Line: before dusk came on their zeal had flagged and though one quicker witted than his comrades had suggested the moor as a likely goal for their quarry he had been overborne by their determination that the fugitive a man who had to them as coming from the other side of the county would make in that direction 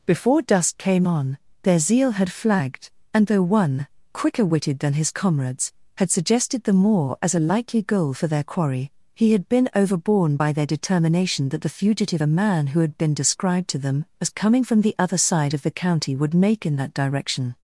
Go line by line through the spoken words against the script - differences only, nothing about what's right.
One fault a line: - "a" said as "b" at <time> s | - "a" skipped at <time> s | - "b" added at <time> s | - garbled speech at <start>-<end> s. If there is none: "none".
- "been described" added at 13.0 s